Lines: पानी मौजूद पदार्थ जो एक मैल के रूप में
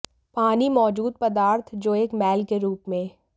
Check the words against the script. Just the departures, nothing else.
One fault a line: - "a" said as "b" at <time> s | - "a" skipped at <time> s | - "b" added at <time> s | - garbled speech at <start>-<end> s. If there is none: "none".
none